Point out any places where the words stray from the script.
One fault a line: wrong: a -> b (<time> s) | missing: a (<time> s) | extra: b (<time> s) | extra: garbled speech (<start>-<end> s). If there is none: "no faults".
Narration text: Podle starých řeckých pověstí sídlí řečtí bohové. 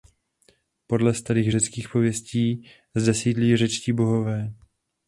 extra: zde (2.9 s)